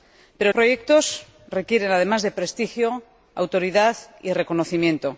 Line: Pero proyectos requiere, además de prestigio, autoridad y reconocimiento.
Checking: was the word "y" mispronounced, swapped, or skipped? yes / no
no